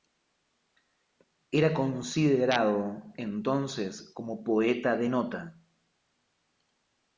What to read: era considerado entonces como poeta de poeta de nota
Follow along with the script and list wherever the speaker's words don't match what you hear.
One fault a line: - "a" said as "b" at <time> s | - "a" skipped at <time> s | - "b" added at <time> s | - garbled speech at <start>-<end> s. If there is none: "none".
- "poeta de" skipped at 5.1 s